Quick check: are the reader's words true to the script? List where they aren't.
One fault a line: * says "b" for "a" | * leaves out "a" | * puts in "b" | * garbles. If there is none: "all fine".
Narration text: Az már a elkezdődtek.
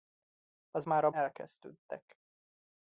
all fine